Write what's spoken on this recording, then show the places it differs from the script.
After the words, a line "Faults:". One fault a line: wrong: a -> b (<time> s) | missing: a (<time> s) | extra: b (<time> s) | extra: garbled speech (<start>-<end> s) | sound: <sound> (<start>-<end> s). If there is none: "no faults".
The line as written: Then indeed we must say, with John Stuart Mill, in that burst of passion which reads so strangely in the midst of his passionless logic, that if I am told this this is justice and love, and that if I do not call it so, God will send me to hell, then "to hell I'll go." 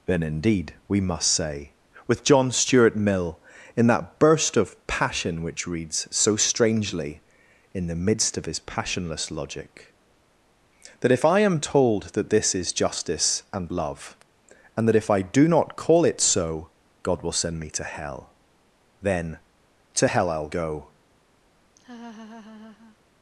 Then indeed we must say, with John Stuart Mill, in that burst of passion which reads so strangely in the midst of his passionless logic, that if I am told that this is justice and love, and that if I do not call it so, God will send me to hell, then "to hell I'll go."
Faults:
wrong: this -> that (12.1 s)
sound: laugh (21.8-23.0 s)